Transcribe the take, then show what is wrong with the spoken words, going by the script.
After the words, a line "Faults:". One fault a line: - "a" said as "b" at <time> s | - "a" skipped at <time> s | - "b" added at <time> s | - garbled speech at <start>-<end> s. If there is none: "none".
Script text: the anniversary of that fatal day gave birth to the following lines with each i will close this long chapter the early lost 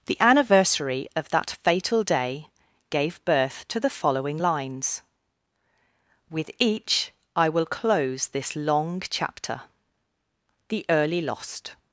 the anniversary of that fatal day gave birth to the following lines with each i will close this long chapter the early lost
Faults:
none